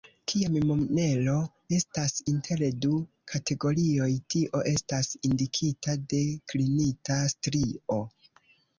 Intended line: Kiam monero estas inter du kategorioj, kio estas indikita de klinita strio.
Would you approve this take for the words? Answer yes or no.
no